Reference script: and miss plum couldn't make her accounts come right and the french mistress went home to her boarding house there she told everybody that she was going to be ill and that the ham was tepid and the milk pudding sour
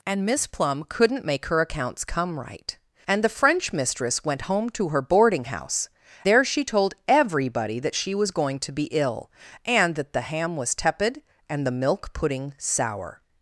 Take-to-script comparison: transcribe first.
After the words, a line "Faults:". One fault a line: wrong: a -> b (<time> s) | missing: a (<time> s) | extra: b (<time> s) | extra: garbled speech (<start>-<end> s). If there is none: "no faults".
and miss plum couldn't make her accounts come right and the french mistress went home to her boarding house there she told everybody that she was going to be ill and that the ham was tepid and the milk pudding sour
Faults:
no faults